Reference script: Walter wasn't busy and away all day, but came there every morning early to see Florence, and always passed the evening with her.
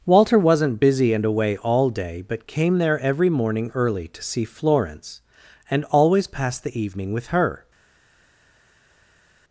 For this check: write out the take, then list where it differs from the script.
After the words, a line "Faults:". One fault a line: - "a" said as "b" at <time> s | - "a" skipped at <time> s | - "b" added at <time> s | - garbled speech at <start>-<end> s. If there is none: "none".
Walter wasn't busy and away all day, but came there every morning early to see Florence, and always passed the evening with her.
Faults:
none